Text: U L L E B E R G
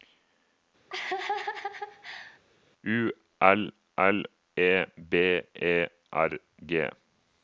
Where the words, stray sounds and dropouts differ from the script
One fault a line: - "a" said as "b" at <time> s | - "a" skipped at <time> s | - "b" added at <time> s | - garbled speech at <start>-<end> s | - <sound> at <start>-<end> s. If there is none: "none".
- laugh at 0.9-2.4 s